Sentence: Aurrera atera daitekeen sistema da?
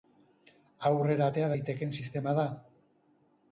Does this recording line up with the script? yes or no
yes